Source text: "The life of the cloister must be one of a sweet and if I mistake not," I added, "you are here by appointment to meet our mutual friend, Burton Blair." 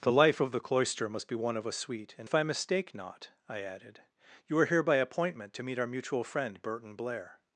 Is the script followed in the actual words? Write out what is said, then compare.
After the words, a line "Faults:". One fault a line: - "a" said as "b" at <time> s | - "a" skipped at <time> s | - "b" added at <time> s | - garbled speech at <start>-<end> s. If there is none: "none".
"The life of the cloister must be one of a sweet and if I mistake not," I added, "you are here by appointment to meet our mutual friend, Burton Blair."
Faults:
none